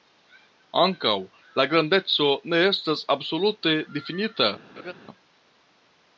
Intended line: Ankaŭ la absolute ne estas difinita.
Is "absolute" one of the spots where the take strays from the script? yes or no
yes